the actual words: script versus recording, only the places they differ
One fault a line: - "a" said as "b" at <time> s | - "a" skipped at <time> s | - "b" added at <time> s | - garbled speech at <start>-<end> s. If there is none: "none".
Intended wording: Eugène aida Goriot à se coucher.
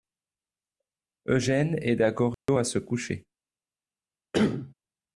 none